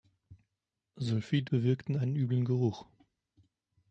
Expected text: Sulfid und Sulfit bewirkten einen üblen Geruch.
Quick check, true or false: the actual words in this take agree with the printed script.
false